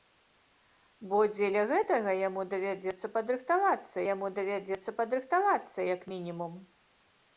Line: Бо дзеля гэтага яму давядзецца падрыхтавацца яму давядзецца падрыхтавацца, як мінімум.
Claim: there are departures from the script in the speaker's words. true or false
false